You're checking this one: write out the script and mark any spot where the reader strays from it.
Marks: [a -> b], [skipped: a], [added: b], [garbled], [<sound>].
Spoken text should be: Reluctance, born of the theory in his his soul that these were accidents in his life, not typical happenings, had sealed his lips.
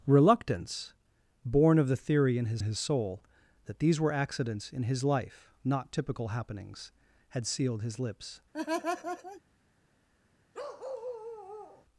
Reluctance, born of the theory in his his soul that these were accidents in his life, not typical happenings, had sealed his lips. [laugh] [bark]